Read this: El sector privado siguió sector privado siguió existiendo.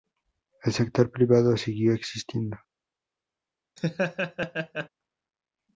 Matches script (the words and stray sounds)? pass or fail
fail